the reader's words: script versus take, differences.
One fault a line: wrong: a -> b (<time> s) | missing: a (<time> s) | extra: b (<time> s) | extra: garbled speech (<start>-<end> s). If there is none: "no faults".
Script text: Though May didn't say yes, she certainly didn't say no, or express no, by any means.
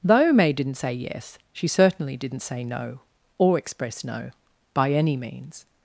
no faults